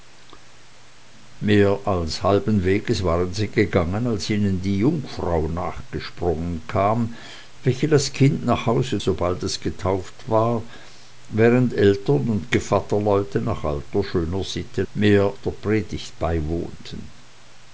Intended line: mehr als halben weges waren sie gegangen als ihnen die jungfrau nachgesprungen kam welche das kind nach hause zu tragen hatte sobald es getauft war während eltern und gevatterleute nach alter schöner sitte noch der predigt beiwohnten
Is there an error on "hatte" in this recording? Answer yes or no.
yes